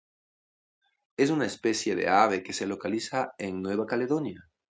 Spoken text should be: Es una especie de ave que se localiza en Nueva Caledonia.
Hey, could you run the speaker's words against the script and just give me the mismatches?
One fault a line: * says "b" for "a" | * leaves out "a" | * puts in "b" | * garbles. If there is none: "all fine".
all fine